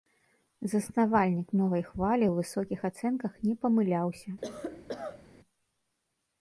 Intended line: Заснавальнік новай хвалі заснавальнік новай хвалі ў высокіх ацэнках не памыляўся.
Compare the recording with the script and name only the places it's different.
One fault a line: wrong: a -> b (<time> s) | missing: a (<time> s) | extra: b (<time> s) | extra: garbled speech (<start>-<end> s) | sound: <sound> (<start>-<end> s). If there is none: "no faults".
missing: заснавальнік новай хвалі (2.3 s)
sound: cough (4.4-5.2 s)